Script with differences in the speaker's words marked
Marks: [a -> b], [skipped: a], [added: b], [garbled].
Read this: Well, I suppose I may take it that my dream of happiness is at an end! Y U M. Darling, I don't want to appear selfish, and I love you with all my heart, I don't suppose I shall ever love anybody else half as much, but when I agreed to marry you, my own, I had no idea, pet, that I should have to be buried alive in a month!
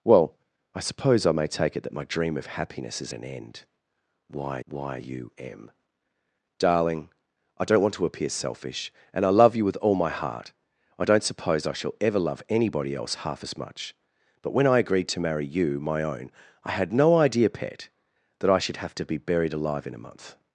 Well, I suppose I may take it that my dream of happiness is [skipped: at] an end! Y [added: y] U M. Darling, I don't want to appear selfish, and I love you with all my heart, I don't suppose I shall ever love anybody else half as much, but when I agreed to marry you, my own, I had no idea, pet, that I should have to be buried alive in a month!